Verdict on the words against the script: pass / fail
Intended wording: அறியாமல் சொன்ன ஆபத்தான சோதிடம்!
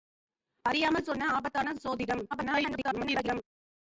fail